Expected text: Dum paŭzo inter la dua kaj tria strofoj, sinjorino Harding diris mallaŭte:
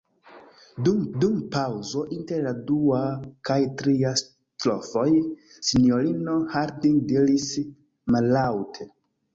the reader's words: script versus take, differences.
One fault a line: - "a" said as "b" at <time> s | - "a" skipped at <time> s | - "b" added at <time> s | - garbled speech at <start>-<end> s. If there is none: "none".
- "dum" added at 1.2 s